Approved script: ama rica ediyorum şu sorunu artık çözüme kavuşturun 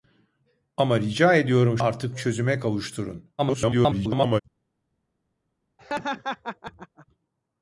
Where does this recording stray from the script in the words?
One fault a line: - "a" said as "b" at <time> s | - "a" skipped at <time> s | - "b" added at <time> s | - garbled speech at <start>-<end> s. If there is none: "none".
- "şu sorunu" skipped at 1.8 s
- garbled speech at 3.4-4.4 s